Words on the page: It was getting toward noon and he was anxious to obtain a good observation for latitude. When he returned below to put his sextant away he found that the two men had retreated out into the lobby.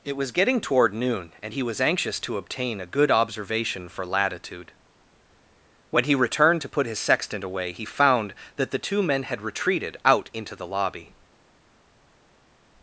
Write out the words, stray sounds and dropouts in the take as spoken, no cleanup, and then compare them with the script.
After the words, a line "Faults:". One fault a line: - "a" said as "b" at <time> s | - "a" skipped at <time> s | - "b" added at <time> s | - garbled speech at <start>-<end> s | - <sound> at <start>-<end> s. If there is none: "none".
It was getting toward noon and he was anxious to obtain a good observation for latitude. When he returned to put his sextant away he found that the two men had retreated out into the lobby.
Faults:
- "below" skipped at 6.6 s